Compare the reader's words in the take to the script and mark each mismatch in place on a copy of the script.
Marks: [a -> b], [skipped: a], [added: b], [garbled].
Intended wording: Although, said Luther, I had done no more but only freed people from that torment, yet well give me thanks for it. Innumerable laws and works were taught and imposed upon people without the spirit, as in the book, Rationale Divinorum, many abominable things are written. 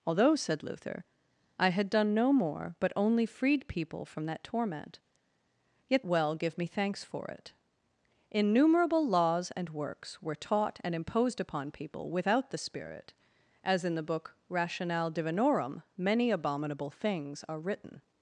Although, said Luther, I had done no more but only freed people from that torment, yet well give me thanks for it. Innumerable laws and works were taught and imposed upon people without the spirit, as in the book, Rationale Divinorum, many abominable things are written.